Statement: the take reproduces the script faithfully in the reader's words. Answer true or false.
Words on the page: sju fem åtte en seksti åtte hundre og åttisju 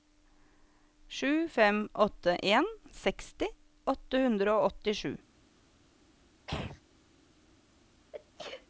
true